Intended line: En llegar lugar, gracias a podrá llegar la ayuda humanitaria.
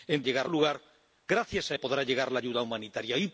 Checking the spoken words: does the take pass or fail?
pass